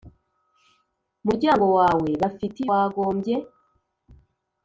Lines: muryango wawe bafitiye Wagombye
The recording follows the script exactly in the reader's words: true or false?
true